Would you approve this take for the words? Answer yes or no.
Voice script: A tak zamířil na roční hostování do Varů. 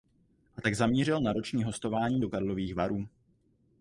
no